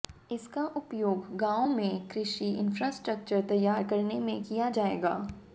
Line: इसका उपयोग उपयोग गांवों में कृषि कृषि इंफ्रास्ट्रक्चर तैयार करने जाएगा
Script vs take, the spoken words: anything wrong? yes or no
yes